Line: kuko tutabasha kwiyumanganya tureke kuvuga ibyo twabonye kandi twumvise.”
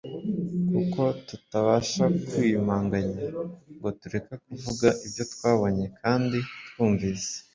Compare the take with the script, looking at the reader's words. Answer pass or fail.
fail